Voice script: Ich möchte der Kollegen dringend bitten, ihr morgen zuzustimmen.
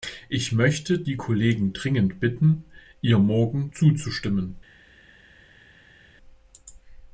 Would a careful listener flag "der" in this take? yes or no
yes